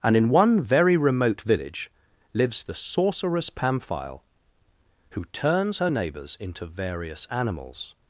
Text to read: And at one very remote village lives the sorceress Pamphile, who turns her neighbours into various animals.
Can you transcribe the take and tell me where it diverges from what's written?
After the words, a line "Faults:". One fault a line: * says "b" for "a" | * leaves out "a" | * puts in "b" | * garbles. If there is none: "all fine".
And in one very remote village lives the sorceress Pamphile, who turns her neighbours into various animals.
Faults:
* says "in" for "at"